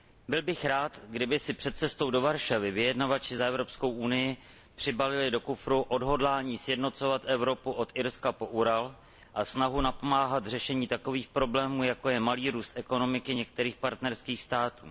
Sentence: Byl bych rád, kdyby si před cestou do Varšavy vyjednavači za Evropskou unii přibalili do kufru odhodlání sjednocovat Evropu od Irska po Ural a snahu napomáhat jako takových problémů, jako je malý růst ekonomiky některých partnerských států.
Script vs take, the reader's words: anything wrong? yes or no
yes